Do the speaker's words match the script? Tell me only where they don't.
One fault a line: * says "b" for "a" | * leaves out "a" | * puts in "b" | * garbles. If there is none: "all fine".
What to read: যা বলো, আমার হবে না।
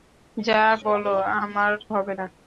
all fine